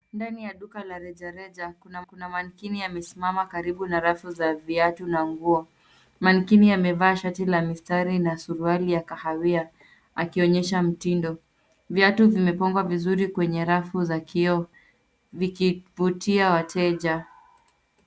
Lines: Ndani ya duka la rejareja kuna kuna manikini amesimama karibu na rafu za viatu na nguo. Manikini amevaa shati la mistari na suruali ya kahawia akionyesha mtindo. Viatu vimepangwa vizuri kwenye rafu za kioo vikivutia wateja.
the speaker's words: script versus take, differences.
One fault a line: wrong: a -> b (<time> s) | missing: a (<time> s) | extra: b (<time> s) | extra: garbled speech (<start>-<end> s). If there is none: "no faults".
no faults